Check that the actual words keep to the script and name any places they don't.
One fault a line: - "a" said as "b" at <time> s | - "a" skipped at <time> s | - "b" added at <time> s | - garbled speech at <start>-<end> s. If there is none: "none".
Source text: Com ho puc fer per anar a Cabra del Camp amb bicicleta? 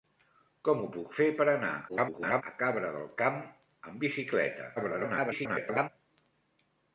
- garbled speech at 1.9-2.4 s
- garbled speech at 4.8-5.9 s